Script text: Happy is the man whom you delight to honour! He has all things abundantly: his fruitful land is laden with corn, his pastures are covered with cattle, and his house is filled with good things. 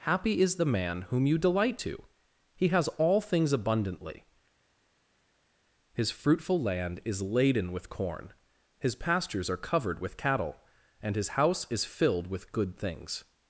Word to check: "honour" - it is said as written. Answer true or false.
false